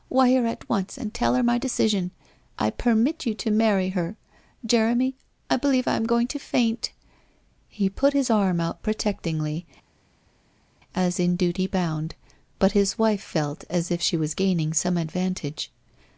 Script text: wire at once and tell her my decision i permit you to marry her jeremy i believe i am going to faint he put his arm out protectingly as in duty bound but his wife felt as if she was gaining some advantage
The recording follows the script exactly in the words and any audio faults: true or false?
true